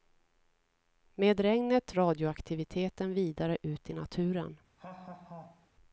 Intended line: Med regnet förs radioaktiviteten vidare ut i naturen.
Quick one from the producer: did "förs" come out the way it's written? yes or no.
no